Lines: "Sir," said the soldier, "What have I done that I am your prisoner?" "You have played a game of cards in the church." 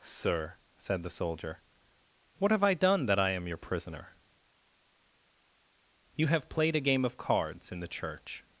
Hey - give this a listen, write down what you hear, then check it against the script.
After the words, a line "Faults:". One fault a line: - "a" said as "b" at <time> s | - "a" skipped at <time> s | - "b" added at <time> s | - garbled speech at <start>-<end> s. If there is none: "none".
"Sir," said the soldier, "What have I done that I am your prisoner?" "You have played a game of cards in the church."
Faults:
none